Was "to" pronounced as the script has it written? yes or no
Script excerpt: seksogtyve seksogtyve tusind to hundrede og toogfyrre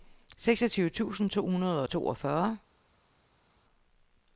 yes